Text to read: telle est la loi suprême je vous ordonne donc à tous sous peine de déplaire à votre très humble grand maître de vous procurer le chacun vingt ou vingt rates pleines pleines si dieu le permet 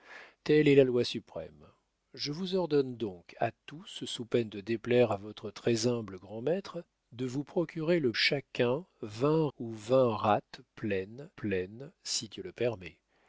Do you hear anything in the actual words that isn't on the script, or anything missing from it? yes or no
no